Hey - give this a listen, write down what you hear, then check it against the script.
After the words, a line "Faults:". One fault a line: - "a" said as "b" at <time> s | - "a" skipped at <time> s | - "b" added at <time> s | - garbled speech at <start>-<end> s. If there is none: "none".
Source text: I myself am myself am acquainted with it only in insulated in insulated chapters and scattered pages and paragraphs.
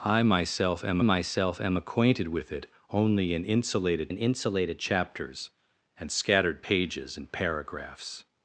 I myself am myself am acquainted with it only in insulated in insulated chapters and scattered pages and paragraphs.
Faults:
none